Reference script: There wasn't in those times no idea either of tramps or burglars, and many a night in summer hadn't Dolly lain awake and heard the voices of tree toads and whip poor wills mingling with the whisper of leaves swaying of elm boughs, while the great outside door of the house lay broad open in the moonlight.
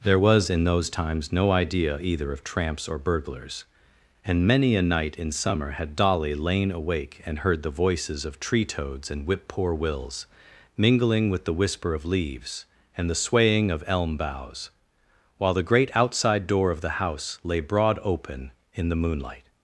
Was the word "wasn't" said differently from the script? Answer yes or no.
yes